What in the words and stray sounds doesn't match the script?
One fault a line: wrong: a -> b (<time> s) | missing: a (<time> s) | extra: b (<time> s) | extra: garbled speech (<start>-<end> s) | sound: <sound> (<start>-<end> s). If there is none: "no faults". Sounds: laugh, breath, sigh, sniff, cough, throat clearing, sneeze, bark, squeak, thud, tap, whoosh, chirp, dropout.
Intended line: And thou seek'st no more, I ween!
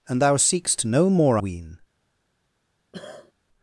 missing: I (1.4 s)
sound: cough (2.9-3.3 s)